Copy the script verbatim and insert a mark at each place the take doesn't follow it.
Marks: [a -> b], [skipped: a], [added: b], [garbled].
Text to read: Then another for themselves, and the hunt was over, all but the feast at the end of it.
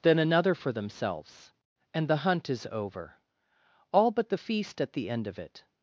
Then another for themselves, and the hunt [was -> is] over, all but the feast at the end of it.